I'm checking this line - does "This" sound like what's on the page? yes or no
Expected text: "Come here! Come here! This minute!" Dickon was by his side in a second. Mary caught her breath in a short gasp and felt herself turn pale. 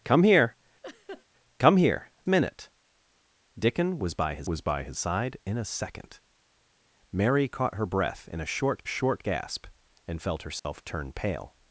no